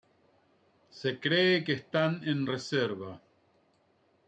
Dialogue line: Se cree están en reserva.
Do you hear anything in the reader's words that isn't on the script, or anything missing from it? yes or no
yes